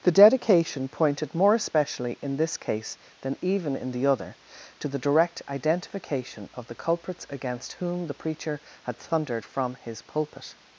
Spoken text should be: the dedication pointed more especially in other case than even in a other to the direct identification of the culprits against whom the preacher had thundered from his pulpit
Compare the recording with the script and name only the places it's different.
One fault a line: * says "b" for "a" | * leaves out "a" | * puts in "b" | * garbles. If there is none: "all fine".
* says "this" for "other"
* says "the" for "a"